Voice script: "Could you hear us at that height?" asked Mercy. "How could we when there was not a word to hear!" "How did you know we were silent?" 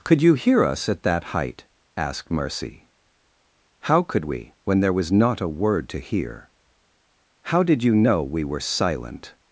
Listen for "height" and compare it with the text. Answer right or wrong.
right